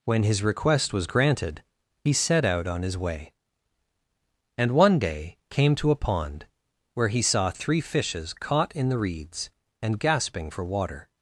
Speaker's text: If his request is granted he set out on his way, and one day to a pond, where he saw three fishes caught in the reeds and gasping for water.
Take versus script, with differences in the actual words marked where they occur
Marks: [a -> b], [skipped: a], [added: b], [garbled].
[If -> When] his request [is -> was] granted he set out on his way, and one day [added: came] to a pond, where he saw three fishes caught in the reeds and gasping for water.